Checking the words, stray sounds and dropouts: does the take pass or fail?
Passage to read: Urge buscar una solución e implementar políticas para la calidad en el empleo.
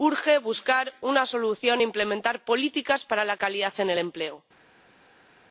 pass